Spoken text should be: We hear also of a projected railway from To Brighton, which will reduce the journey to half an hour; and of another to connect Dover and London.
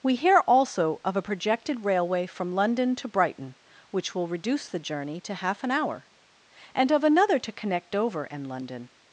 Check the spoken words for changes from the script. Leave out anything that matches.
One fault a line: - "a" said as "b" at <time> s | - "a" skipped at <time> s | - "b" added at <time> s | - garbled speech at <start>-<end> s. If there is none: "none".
- "London" added at 2.5 s